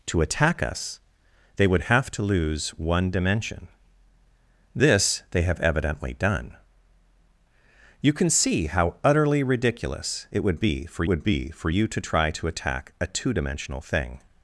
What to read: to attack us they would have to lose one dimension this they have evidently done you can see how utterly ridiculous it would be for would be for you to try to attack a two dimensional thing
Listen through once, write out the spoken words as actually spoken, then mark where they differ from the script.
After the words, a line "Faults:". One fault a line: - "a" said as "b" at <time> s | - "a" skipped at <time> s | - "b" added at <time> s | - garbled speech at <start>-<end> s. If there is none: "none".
to attack us they would have to lose one dimension this they have evidently done you can see how utterly ridiculous it would be for would be for you to try to attack a two dimensional thing
Faults:
none